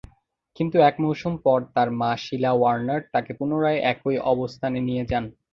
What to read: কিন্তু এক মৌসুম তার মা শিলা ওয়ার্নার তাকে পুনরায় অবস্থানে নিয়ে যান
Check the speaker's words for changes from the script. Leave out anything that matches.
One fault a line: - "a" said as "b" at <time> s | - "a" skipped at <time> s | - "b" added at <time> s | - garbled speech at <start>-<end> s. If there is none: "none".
- "পর" added at 1.4 s
- "একই" added at 3.9 s